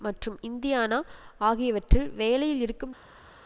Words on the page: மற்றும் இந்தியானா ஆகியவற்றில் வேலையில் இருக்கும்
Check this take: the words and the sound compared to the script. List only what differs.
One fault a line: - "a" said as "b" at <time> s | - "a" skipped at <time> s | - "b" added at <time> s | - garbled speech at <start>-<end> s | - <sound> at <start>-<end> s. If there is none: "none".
none